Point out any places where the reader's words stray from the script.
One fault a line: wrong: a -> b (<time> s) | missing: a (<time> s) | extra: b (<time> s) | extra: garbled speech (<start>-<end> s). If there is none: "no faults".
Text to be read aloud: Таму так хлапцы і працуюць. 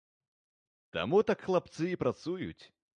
no faults